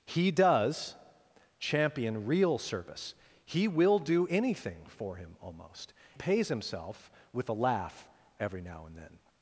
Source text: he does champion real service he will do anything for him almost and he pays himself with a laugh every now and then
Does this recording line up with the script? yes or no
no